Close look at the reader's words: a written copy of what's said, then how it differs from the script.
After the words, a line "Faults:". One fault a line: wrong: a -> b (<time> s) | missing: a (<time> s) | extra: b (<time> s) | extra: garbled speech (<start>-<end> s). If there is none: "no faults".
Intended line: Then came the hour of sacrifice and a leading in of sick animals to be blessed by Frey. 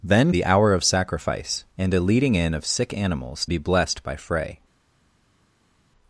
Then the hour of sacrifice and a leading in of sick animals be blessed by Frey.
Faults:
missing: came (0.3 s)
missing: to (3.5 s)